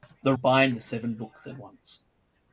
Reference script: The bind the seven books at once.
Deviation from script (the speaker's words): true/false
false